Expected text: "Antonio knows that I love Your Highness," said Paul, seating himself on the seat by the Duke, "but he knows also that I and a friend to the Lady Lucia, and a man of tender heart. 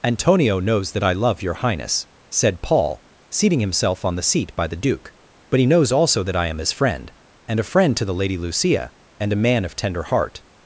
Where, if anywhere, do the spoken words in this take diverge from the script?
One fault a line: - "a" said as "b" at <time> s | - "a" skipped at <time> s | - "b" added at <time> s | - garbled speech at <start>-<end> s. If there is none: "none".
- "am his friend" added at 6.5 s